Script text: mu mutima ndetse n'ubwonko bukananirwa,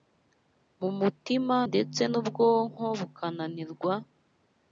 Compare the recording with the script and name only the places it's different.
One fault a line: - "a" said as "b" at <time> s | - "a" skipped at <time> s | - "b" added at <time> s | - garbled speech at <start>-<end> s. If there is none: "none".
none